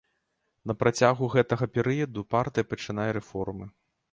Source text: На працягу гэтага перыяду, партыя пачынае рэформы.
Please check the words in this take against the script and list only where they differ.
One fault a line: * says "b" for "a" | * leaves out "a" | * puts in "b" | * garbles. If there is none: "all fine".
all fine